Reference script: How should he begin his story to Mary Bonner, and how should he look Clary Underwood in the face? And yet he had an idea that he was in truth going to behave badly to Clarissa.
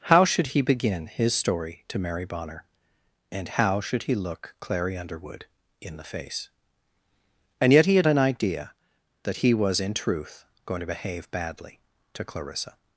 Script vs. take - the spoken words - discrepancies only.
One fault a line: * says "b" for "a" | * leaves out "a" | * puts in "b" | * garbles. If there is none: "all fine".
all fine